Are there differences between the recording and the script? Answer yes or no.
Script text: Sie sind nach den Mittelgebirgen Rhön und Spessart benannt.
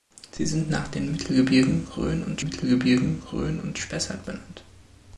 yes